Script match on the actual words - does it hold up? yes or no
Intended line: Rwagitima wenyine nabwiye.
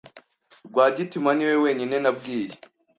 no